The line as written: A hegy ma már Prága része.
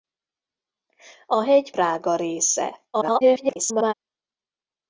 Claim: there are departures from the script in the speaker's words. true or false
true